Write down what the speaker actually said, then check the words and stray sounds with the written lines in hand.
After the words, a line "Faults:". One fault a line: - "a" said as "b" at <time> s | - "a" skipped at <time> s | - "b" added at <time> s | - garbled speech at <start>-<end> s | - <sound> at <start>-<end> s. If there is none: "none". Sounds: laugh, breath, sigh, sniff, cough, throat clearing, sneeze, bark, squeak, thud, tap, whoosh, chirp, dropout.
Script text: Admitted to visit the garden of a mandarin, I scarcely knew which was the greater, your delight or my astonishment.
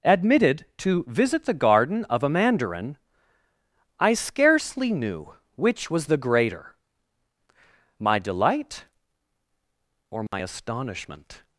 Admitted to visit the garden of a mandarin, I scarcely knew which was the greater, my delight or my astonishment.
Faults:
- "your" said as "my" at 8.0 s
- dropout at 10.3-10.3 s